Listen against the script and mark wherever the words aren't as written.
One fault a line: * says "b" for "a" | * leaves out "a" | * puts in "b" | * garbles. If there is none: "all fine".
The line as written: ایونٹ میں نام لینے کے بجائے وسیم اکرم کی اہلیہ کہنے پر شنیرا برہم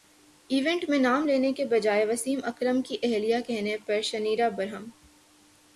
all fine